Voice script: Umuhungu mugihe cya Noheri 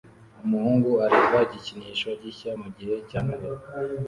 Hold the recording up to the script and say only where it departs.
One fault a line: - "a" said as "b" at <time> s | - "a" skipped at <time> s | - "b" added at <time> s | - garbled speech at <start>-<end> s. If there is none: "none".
- "areba igikinisho gishya" added at 1.1 s